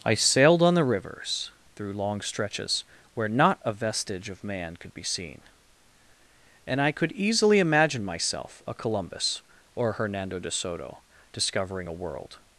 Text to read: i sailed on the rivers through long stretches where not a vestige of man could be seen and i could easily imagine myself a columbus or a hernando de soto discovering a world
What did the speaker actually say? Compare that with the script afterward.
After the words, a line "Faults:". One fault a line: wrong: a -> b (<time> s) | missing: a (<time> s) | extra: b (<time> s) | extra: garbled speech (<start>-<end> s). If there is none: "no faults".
i sailed on the rivers through long stretches where not a vestige of man could be seen and i could easily imagine myself a columbus or hernando de soto discovering a world
Faults:
missing: a (9.9 s)